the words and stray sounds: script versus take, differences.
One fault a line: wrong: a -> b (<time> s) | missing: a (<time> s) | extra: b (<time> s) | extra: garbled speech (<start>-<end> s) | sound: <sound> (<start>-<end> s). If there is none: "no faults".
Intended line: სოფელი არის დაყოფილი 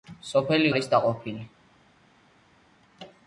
no faults